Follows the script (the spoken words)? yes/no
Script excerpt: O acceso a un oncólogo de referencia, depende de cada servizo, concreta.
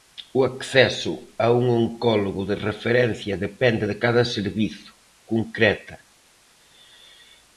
yes